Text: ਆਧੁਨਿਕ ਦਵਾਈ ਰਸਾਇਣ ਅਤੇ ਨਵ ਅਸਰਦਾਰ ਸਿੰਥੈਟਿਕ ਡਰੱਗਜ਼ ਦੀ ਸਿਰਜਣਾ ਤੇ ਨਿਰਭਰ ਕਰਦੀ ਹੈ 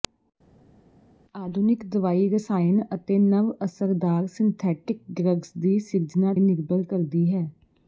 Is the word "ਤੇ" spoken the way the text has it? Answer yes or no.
no